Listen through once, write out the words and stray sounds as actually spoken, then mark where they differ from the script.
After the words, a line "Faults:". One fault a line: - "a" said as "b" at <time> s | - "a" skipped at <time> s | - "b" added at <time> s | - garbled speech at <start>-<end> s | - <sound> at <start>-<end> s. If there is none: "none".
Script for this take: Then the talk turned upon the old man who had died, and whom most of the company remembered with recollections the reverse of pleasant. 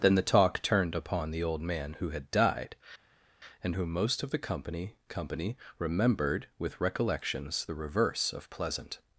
Then the talk turned upon the old man who had died, and whom most of the company company remembered with recollections the reverse of pleasant.
Faults:
- "company" added at 5.1 s